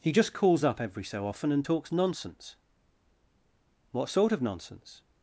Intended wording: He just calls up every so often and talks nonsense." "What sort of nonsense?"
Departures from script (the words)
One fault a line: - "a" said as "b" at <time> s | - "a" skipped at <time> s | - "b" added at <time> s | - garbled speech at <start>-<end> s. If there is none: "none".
none